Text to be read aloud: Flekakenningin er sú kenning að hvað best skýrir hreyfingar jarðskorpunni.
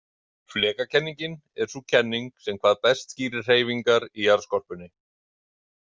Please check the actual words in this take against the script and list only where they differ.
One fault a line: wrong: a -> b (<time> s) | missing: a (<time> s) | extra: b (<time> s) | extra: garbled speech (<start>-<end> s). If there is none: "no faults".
wrong: að -> sem (2.5 s)
extra: í (4.1 s)